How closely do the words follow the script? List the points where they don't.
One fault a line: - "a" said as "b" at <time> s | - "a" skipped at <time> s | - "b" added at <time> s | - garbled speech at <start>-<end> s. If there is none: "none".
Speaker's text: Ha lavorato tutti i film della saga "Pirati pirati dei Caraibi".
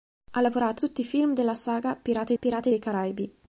none